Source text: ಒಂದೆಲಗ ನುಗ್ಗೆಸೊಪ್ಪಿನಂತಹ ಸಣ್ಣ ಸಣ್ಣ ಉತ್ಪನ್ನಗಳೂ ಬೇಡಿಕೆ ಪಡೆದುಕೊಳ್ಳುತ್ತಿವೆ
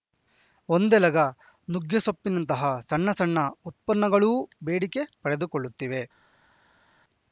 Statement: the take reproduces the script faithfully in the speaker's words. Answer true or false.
true